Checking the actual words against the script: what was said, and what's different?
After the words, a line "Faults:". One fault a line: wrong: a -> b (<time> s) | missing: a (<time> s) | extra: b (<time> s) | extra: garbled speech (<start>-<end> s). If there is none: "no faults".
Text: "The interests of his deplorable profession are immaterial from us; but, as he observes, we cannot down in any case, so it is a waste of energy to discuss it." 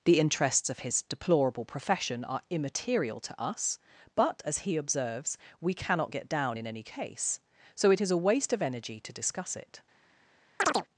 "The interests of his deplorable profession are immaterial to us; but, as he observes, we cannot get down in any case, so it is a waste of energy to discuss it."
Faults:
wrong: from -> to (3.2 s)
extra: get (6.1 s)